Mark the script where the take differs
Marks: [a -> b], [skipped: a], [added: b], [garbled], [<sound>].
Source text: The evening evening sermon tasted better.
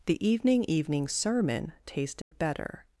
The evening evening sermon tasted [dropout] better.